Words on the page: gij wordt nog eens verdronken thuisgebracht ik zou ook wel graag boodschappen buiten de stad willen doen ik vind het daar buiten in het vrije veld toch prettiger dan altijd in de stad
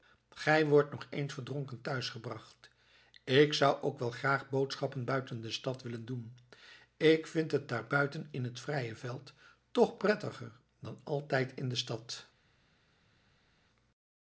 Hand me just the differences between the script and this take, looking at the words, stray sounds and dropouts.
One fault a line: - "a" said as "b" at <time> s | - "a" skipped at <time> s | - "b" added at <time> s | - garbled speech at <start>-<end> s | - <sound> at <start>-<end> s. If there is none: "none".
none